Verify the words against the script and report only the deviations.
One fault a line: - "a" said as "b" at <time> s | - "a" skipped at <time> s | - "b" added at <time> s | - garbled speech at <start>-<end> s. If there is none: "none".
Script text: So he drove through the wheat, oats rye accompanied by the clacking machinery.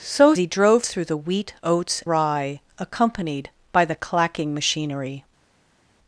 none